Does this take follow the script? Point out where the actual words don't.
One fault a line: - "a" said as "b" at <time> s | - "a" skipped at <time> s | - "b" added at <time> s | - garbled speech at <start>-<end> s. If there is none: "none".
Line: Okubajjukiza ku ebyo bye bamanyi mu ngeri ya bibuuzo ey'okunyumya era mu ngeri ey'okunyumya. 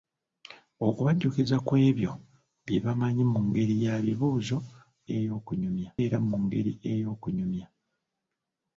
none